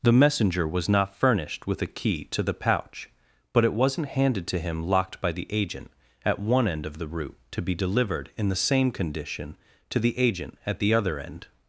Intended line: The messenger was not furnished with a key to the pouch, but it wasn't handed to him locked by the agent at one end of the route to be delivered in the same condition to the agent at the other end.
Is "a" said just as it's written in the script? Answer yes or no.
yes